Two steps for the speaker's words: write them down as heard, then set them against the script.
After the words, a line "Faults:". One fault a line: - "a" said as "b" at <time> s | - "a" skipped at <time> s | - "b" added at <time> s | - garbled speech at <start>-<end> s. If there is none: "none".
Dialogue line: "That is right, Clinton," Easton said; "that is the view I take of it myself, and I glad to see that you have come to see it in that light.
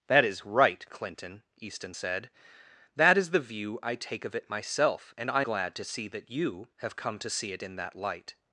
"That is right, Clinton," Easton said; "that is the view I take of it myself, and I glad to see that you have come to see it in that light.
Faults:
none